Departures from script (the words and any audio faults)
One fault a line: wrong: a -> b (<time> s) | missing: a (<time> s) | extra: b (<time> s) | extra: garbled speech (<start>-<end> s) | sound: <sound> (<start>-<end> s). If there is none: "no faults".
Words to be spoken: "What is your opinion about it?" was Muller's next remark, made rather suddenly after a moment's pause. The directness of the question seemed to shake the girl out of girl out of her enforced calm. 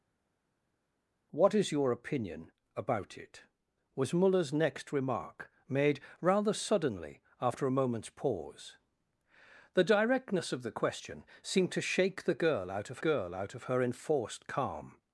no faults